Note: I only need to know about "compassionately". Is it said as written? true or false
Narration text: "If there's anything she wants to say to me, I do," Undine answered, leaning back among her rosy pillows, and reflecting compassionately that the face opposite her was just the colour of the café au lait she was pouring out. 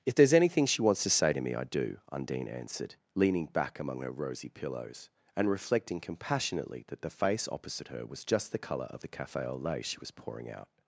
true